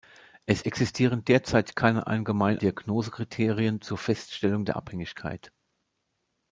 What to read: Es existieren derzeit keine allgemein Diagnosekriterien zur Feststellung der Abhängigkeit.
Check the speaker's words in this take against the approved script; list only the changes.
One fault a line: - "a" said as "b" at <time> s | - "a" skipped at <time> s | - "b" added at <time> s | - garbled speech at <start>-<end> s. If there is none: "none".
none